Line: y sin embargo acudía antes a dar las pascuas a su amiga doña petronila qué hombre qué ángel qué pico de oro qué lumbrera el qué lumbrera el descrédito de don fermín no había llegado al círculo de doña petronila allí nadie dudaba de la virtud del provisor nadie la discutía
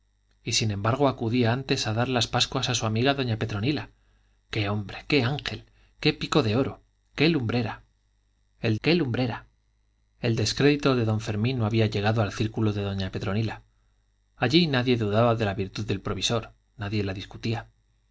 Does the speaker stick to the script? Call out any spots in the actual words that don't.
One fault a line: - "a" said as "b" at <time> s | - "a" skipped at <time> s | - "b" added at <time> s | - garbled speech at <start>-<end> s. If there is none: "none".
none